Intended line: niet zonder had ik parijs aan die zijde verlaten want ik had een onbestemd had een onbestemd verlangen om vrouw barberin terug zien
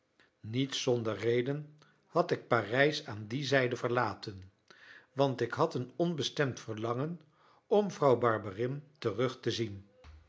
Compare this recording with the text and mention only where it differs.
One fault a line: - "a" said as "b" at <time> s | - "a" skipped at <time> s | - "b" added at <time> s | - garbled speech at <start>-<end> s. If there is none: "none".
- "reden" added at 1.2 s
- "had een onbestemd" skipped at 6.6 s
- "te" added at 9.4 s